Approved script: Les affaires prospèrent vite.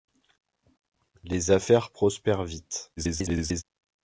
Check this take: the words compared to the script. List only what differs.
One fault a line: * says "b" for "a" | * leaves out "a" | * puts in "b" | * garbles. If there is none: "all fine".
* garbles